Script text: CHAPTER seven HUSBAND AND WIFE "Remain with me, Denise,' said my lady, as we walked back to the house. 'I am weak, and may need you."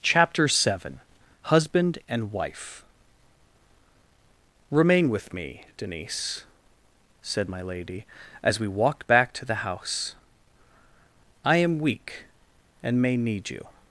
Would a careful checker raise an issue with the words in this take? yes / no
no